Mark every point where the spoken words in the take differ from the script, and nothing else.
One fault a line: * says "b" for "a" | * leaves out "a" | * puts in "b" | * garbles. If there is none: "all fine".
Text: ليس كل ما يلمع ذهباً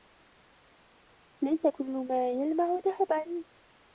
all fine